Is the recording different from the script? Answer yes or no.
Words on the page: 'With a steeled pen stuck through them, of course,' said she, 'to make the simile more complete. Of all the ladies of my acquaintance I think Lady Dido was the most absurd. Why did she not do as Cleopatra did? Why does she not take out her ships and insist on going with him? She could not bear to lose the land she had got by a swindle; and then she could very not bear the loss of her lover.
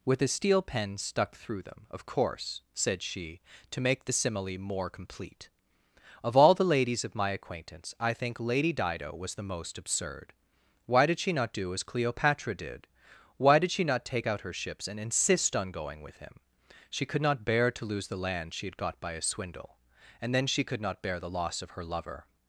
yes